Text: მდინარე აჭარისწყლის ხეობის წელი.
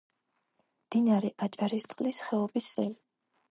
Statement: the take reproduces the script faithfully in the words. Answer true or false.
true